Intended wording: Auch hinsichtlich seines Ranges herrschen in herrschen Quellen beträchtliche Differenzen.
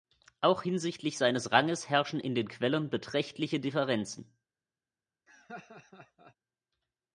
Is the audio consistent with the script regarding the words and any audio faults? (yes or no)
no